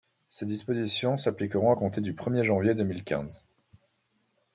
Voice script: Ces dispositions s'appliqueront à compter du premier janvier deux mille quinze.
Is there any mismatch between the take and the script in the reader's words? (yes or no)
no